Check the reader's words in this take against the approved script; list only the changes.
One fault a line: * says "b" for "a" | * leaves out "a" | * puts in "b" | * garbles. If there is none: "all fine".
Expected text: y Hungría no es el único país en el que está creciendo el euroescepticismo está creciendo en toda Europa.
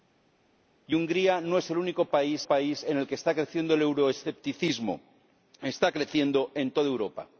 * puts in "país"